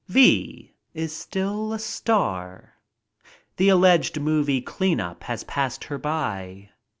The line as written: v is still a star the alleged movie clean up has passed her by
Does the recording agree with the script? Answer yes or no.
yes